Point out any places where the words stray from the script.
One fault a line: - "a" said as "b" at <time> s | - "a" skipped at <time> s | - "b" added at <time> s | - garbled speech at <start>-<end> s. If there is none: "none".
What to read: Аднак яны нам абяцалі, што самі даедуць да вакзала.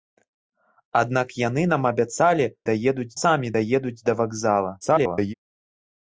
- "што" said as "даедуць" at 2.7 s
- garbled speech at 4.8-5.3 s